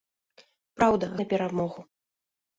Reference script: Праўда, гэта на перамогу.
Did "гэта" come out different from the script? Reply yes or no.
yes